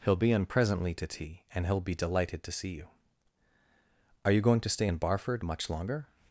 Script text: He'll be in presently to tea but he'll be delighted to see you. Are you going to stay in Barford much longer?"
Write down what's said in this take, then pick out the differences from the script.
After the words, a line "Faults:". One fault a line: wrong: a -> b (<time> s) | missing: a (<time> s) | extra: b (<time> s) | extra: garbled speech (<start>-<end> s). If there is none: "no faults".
He'll be in presently to tea and he'll be delighted to see you. Are you going to stay in Barford much longer?"
Faults:
wrong: but -> and (1.5 s)